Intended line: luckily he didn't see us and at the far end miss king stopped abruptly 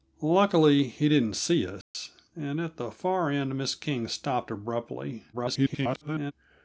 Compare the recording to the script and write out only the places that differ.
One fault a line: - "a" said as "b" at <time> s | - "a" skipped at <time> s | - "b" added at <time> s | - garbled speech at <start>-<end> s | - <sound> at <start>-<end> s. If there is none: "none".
- dropout at 1.8-1.9 s
- garbled speech at 5.3-6.3 s